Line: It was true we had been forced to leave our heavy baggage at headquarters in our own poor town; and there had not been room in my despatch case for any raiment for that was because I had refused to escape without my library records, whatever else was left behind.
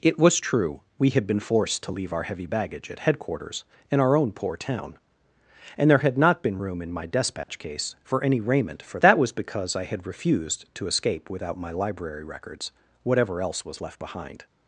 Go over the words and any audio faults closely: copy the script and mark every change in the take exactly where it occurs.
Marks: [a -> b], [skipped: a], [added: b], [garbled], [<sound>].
It was true we had been forced to leave our heavy baggage at headquarters in our own poor town; and there had not been room in my despatch [dropout] case for any raiment for that was because I had refused to escape without my library records, whatever else was left behind.